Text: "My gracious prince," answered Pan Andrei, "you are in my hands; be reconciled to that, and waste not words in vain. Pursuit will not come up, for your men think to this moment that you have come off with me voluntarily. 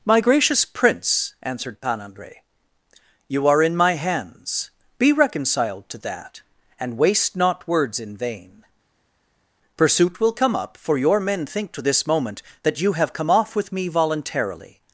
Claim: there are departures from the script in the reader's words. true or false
true